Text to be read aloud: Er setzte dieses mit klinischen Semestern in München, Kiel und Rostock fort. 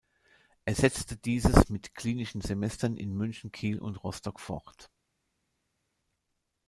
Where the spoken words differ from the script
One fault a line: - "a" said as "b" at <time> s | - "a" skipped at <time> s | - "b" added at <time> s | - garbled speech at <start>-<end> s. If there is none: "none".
none